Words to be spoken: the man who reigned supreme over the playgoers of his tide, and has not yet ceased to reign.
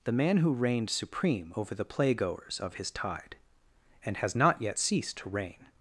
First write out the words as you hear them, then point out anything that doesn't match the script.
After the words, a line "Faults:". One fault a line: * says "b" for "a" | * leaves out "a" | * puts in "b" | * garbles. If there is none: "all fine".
the man who reigned supreme over the playgoers of his tide, and has not yet ceased to reign.
Faults:
all fine